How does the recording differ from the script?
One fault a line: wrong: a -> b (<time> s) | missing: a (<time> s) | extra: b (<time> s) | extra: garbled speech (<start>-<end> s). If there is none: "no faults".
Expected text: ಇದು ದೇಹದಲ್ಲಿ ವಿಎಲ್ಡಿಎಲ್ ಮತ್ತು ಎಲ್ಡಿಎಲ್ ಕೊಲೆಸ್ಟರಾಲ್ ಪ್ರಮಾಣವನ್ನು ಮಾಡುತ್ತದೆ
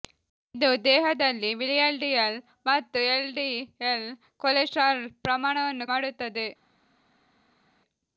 no faults